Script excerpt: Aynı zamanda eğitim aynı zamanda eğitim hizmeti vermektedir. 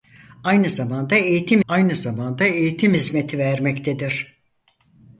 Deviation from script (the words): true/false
false